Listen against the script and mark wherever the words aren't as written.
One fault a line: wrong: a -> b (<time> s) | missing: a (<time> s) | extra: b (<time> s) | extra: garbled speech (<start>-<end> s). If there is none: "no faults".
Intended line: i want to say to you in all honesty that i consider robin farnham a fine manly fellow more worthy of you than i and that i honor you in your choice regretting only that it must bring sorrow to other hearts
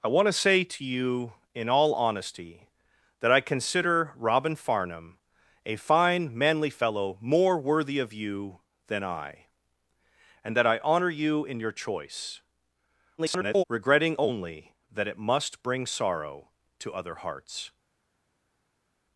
extra: garbled speech (13.2-13.6 s)